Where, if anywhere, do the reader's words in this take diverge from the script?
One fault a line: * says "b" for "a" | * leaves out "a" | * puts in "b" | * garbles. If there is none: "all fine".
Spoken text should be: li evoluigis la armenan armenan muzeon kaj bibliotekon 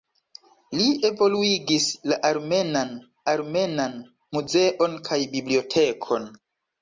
all fine